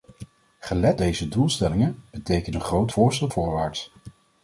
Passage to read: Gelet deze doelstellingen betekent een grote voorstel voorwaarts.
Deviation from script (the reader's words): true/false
false